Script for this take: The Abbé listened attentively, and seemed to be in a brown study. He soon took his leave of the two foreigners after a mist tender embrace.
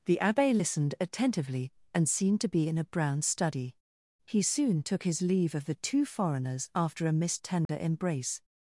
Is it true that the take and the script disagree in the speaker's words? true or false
false